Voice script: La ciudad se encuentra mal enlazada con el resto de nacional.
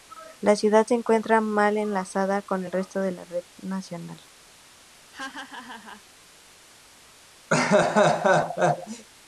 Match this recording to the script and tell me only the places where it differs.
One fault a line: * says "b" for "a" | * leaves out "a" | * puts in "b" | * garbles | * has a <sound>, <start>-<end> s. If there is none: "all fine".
* puts in "la red"
* has a laugh, 5.1-6.0 s
* has a laugh, 7.5-9.1 s